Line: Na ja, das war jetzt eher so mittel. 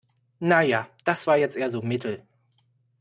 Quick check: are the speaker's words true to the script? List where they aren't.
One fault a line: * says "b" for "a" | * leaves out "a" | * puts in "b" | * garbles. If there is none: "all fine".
all fine